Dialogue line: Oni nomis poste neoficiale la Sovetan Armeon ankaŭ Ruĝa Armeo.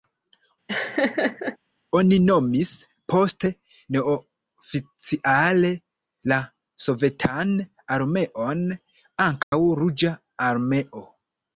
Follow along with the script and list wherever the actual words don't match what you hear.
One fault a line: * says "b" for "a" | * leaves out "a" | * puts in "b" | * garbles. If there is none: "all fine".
all fine